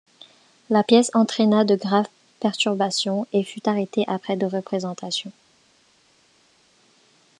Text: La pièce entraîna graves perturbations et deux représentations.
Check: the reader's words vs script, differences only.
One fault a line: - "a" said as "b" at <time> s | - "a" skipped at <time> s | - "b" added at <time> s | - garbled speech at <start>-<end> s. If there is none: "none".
- "de" added at 1.6 s
- "fut arrêtée après" added at 3.4 s